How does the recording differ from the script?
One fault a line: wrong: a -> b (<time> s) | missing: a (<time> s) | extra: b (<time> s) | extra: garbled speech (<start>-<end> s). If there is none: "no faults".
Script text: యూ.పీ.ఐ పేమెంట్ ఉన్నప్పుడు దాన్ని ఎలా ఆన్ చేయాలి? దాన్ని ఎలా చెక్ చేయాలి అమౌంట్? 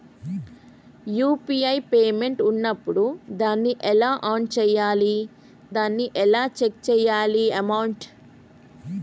no faults